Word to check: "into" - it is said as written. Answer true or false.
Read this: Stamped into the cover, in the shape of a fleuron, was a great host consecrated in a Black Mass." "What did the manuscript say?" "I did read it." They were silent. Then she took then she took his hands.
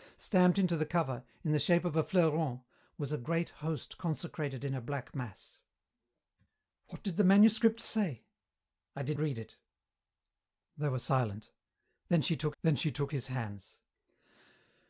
true